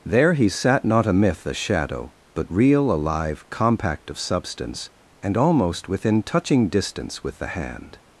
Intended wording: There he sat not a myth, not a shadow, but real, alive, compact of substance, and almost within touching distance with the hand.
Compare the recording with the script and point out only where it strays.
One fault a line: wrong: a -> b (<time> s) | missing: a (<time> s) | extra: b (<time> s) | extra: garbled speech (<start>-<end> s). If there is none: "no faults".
missing: not (1.4 s)